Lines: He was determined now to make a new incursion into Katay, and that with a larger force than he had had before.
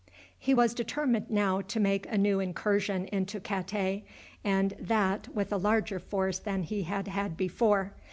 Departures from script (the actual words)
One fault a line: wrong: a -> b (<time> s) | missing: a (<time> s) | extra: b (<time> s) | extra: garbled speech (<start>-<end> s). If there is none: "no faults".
no faults